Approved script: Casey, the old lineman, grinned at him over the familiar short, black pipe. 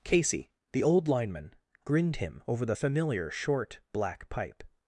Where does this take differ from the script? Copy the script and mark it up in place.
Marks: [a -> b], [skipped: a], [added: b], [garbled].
Casey, the old lineman, grinned [skipped: at] him over the familiar short, black pipe.